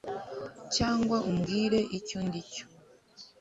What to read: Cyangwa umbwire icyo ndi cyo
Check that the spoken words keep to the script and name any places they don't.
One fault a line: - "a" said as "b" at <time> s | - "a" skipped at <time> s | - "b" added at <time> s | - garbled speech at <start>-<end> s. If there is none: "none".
none